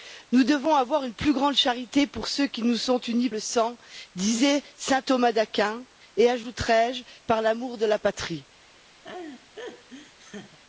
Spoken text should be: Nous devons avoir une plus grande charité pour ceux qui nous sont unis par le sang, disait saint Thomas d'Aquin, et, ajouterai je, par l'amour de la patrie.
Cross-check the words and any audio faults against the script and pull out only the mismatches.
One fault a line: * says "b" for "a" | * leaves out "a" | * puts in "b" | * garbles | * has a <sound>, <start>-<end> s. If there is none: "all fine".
* leaves out "par"
* has a laugh, 9.0-10.6 s